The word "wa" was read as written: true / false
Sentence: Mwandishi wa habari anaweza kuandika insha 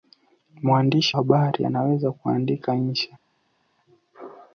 false